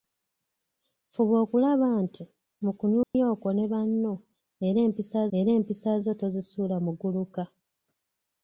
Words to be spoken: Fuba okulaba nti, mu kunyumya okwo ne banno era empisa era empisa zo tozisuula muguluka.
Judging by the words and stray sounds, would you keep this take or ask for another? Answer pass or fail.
fail